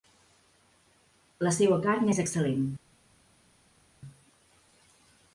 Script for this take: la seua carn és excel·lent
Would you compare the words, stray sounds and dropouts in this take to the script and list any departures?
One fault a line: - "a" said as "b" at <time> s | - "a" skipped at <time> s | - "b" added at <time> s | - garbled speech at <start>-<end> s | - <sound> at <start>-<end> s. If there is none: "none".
none